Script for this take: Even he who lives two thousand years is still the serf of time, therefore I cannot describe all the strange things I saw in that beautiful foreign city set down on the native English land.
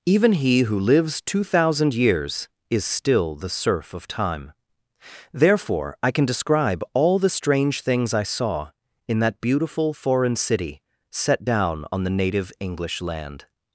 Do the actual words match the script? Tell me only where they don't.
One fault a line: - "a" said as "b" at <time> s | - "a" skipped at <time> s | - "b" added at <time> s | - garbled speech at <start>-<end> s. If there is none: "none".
- "cannot" said as "can" at 6.1 s